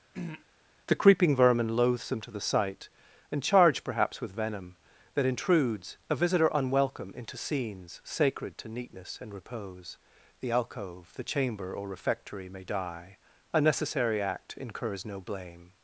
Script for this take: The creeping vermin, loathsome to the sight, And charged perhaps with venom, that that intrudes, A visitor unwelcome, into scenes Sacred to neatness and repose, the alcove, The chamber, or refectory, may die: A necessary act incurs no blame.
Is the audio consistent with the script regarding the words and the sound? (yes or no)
no